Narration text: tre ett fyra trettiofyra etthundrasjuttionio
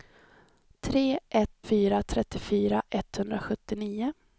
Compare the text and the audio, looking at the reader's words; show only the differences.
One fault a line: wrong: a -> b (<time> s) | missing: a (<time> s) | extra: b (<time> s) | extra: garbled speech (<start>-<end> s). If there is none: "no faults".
no faults